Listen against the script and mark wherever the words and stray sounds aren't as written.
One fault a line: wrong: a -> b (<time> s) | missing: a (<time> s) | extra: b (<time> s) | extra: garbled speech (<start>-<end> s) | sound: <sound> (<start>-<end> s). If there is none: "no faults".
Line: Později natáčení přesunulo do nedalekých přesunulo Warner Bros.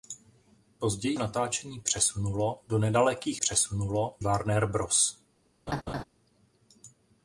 sound: laugh (5.7-6.0 s)